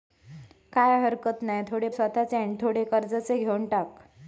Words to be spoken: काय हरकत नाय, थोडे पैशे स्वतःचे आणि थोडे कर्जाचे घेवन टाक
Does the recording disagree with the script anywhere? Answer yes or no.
yes